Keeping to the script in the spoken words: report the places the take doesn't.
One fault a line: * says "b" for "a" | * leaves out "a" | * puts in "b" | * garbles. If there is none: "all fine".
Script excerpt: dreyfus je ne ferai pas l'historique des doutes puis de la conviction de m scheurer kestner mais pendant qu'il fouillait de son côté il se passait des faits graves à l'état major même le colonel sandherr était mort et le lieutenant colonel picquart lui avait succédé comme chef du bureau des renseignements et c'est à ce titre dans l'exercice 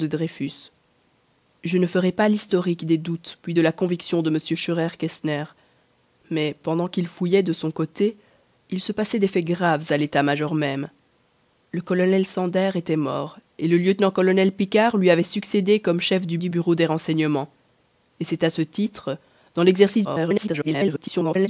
* puts in "du"
* garbles